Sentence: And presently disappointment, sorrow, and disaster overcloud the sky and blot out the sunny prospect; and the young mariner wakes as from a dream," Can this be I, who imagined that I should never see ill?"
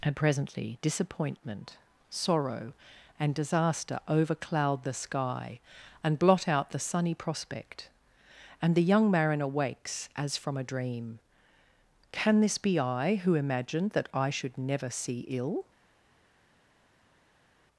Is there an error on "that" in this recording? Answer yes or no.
no